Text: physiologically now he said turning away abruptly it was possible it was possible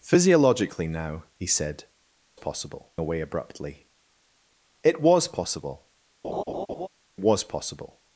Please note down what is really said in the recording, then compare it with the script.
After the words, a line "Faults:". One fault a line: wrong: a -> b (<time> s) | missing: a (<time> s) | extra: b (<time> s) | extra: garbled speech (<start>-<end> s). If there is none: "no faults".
physiologically now he said possible away abruptly it was possible was possible
Faults:
wrong: turning -> possible (2.3 s)
missing: it (5.9 s)